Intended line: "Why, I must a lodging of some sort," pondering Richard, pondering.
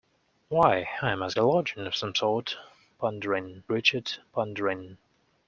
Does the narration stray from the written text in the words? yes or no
no